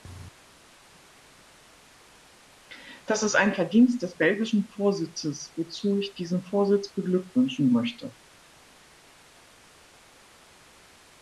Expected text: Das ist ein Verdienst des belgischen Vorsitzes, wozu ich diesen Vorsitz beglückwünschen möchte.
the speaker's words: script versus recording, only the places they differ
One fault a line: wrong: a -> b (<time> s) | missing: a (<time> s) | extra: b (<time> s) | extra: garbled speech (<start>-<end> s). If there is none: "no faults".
no faults